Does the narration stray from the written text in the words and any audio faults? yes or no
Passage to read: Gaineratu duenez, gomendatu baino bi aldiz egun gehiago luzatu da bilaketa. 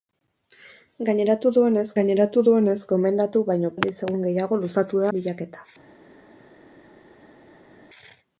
yes